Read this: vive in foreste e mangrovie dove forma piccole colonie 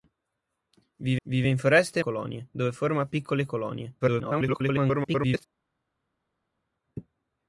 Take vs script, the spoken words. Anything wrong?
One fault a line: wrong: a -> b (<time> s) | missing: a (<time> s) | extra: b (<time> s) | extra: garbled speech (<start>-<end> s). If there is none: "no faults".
extra: vive (1.2 s)
wrong: mangrovie -> colonie (2.0 s)
extra: garbled speech (4.0-5.5 s)